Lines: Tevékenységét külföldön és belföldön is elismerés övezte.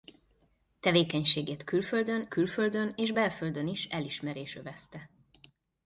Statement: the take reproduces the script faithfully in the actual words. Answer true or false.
false